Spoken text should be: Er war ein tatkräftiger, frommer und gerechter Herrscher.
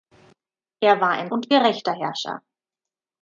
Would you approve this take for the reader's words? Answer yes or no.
no